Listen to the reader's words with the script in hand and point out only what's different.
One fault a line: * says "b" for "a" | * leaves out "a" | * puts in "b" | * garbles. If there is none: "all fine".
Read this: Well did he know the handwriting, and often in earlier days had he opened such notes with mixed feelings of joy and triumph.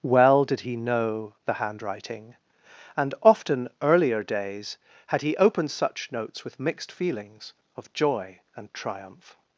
* leaves out "in"